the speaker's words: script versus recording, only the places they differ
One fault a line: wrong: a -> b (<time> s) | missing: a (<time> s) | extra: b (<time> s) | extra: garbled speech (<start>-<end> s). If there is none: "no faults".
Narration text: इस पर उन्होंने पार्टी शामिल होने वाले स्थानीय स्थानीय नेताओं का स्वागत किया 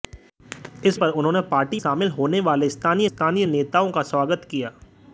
no faults